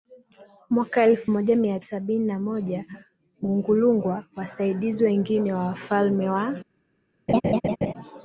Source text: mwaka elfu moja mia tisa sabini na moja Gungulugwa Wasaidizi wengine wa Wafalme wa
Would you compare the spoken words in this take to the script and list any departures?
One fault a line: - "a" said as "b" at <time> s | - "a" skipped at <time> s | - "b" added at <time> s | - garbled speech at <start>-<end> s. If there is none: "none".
- "tisa" skipped at 1.8 s